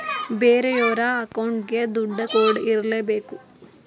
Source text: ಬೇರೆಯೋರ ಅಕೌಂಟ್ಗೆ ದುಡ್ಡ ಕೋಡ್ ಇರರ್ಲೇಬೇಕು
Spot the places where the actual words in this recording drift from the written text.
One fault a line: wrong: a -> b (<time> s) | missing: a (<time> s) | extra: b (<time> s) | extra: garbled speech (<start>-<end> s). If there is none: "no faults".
no faults